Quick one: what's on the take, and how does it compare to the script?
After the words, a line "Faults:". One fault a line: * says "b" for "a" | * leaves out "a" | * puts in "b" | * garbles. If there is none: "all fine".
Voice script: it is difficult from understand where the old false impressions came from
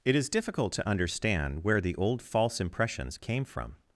it is difficult to understand where the old false impressions came from
Faults:
* says "to" for "from"